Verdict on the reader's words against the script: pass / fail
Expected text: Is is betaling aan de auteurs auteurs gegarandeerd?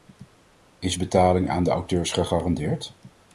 fail